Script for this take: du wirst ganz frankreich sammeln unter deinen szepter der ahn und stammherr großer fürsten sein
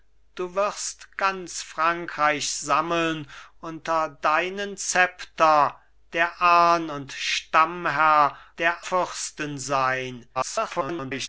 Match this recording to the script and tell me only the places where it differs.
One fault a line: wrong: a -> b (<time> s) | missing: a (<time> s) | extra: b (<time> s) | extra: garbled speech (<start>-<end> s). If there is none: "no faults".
wrong: großer -> der (8.6 s)
extra: garbled speech (10.3-11.3 s)